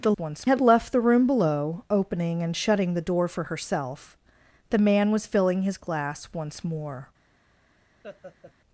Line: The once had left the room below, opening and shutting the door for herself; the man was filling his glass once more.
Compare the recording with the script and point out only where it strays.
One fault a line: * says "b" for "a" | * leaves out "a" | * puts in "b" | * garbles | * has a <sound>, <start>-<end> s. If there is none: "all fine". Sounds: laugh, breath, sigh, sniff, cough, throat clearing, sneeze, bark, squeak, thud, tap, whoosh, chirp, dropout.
* has a laugh, 8.0-8.5 s